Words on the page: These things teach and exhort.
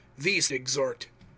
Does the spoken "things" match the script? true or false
false